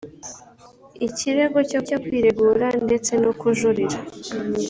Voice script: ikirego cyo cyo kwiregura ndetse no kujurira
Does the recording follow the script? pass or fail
pass